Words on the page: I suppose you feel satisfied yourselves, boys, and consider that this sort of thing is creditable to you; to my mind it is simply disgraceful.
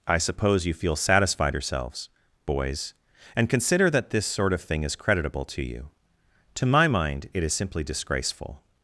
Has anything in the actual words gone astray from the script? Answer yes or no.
no